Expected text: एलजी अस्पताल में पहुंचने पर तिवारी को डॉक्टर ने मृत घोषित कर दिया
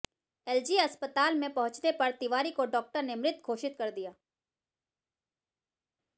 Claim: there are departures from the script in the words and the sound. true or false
false